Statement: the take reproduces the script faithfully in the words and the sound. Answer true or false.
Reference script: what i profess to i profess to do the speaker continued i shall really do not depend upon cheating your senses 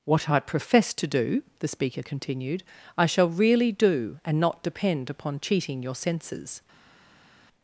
false